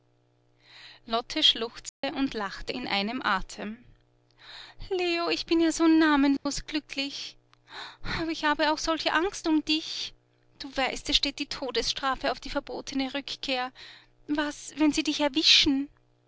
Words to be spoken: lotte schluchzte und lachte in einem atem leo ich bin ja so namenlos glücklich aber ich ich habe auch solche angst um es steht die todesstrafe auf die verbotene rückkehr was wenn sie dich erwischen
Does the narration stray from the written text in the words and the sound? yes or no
yes